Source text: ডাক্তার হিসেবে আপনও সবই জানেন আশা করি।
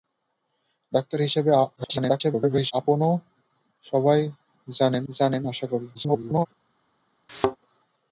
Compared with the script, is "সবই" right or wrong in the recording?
right